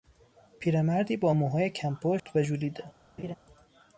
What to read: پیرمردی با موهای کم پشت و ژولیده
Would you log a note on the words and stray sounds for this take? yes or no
yes